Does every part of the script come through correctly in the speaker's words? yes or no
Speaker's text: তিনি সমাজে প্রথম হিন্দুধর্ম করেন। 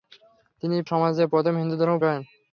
yes